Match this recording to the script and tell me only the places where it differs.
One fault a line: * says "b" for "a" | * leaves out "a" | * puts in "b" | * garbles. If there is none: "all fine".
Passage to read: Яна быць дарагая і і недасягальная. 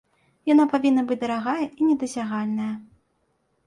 * puts in "павінна"
* leaves out "і"